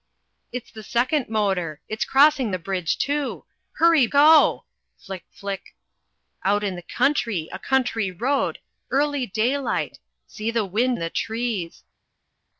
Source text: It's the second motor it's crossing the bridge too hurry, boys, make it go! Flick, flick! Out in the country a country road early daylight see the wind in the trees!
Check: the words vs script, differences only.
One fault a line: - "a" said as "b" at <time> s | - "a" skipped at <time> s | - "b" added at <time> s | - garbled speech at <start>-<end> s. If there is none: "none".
- "boys make it" skipped at 4.1 s
- "in" skipped at 11.0 s